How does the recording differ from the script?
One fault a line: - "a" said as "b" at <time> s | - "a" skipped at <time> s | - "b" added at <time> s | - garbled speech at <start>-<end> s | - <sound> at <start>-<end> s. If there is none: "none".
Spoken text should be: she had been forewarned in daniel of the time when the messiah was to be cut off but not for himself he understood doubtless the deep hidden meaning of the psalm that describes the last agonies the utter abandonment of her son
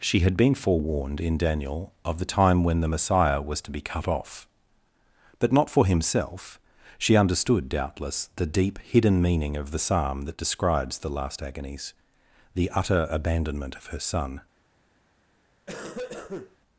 - "he" said as "she" at 7.0 s
- cough at 15.7-16.6 s